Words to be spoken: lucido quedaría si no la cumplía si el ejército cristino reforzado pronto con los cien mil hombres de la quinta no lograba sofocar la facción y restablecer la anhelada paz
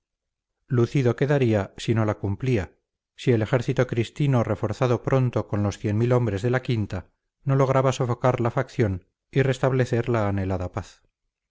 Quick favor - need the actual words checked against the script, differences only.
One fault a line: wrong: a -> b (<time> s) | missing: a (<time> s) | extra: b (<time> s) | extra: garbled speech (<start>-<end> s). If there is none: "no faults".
no faults